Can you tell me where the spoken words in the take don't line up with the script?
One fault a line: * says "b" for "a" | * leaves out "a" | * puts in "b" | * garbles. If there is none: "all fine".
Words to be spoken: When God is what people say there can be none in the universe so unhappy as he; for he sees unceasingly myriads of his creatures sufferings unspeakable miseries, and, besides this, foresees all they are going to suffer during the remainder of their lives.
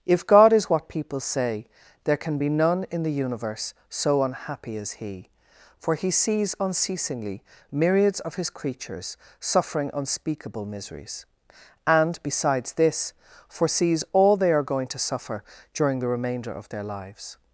* says "If" for "When"
* says "suffering" for "sufferings"